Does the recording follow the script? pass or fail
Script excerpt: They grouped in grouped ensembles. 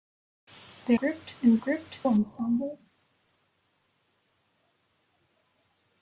pass